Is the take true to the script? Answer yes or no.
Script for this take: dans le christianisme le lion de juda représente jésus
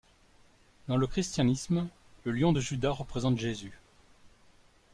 yes